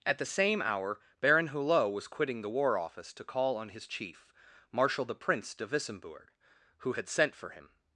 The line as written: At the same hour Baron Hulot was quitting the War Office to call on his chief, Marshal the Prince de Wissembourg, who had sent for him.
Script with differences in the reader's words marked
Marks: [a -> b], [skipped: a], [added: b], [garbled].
At the same hour Baron Hulot was quitting the War Office to call on his chief, Marshal the Prince de Wissembourg, who had sent for him.